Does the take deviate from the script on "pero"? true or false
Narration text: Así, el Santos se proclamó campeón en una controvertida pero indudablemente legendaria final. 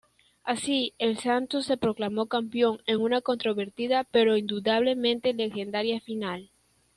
false